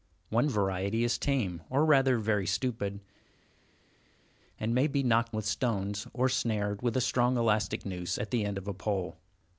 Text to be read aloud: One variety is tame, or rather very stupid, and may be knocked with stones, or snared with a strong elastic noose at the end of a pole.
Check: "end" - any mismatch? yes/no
no